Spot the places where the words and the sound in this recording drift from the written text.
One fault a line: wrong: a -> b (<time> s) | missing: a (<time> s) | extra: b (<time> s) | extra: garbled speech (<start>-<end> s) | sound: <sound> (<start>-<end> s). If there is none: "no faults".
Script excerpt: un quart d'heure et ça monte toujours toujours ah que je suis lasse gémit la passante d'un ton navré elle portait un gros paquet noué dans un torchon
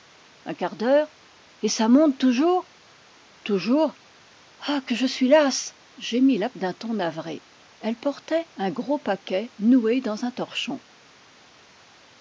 missing: passante (6.5 s)